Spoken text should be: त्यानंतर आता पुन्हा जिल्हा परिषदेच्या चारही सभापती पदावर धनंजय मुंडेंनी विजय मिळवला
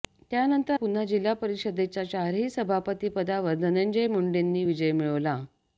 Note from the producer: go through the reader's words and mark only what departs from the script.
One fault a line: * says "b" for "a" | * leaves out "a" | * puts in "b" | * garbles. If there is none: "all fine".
* leaves out "आता"